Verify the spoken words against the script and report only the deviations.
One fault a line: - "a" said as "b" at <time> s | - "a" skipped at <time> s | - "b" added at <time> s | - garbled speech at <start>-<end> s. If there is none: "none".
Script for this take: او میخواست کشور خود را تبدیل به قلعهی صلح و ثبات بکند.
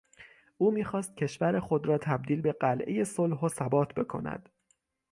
none